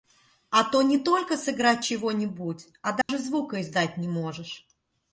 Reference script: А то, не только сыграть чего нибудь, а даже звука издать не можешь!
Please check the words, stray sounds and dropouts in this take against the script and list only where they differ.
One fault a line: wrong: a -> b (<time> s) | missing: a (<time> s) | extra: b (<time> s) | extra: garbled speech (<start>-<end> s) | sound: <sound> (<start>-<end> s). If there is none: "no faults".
sound: dropout (3.0-3.1 s)